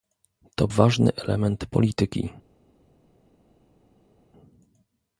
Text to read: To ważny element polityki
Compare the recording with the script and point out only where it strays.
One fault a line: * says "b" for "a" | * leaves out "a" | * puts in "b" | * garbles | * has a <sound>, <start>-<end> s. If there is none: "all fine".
all fine